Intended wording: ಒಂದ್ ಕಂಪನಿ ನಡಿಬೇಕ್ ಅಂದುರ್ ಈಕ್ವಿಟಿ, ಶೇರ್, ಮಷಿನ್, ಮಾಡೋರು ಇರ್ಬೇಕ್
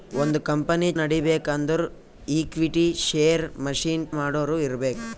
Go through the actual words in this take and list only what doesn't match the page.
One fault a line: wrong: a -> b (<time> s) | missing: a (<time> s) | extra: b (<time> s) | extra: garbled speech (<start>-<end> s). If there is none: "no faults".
no faults